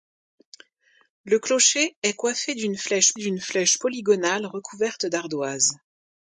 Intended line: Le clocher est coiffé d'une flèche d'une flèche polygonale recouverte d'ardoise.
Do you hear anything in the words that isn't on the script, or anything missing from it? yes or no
no